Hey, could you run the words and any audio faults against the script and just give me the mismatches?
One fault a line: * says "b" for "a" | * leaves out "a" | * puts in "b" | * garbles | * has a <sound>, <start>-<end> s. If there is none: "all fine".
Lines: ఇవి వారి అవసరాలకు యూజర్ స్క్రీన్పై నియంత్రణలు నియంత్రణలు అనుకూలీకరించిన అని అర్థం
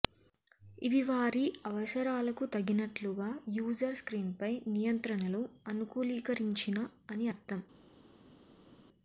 * puts in "తగినట్లుగా"
* leaves out "నియంత్రణలు"